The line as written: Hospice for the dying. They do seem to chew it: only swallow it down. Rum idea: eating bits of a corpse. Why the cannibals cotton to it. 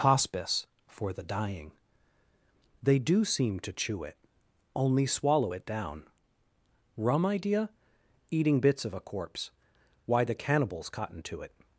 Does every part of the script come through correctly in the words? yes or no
yes